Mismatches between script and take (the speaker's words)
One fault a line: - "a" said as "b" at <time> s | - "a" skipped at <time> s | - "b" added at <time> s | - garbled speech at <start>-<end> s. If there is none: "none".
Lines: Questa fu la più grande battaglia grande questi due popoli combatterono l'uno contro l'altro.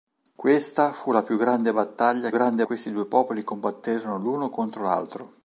none